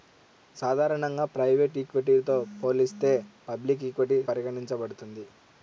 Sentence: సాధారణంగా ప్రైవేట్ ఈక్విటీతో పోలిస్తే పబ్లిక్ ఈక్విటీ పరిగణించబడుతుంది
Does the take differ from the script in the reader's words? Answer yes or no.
no